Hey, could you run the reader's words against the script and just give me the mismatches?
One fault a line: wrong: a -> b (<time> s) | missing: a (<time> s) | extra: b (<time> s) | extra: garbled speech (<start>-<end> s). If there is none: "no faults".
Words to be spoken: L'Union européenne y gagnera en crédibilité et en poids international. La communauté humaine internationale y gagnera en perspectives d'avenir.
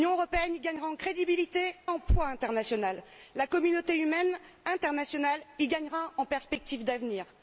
missing: et (1.8 s)